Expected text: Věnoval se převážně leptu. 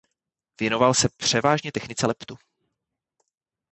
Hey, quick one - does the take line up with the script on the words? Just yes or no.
no